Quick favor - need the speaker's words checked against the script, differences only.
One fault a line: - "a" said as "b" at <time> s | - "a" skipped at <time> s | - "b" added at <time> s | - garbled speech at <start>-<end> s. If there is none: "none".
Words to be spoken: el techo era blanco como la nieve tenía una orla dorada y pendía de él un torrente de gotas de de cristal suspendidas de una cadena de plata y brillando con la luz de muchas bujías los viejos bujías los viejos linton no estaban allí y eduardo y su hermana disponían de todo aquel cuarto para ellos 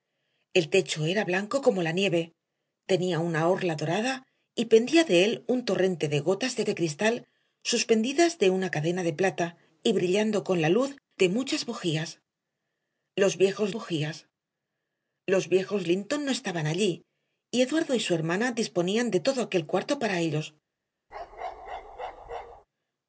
none